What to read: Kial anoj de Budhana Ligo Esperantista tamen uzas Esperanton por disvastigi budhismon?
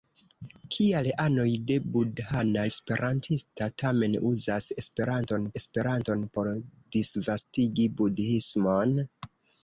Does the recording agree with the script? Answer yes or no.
no